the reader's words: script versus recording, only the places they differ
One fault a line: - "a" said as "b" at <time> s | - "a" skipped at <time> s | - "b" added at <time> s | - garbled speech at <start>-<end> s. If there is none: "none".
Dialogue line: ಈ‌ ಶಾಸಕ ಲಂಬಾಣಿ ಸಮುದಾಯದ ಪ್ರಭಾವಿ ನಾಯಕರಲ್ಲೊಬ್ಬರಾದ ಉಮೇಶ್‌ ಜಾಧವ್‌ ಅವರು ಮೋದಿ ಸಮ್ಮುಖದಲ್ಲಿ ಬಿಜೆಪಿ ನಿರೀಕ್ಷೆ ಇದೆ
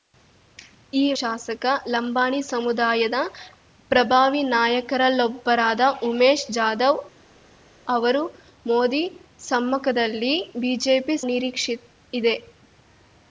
none